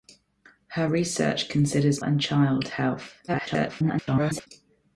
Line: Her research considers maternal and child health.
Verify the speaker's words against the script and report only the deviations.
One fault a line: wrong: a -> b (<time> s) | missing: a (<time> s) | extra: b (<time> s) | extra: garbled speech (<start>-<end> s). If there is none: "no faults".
missing: maternal (2.0 s)
extra: garbled speech (3.3-4.5 s)